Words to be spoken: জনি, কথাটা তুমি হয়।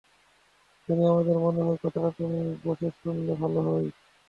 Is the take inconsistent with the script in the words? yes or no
yes